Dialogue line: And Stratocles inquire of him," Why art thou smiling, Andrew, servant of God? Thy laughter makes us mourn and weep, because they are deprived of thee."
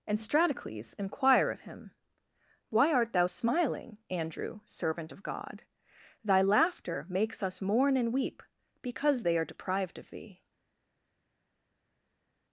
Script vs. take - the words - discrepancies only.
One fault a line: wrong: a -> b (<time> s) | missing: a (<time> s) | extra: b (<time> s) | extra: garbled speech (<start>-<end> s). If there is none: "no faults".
no faults